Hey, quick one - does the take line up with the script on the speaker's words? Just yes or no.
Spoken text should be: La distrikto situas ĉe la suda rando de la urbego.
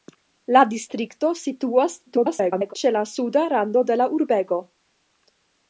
no